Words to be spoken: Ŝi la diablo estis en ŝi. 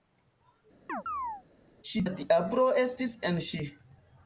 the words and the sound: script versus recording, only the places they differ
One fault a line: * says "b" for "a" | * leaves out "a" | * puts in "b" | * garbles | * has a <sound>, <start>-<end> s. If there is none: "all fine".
* has a chirp, 0.9-1.4 s